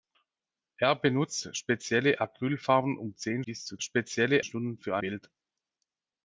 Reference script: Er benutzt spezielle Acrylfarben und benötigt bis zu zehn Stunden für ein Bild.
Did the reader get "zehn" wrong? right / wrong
wrong